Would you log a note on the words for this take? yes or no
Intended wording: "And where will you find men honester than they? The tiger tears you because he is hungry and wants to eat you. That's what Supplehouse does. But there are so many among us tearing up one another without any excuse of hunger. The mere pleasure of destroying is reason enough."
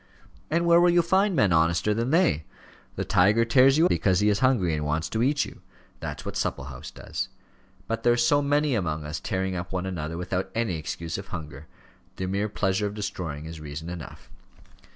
no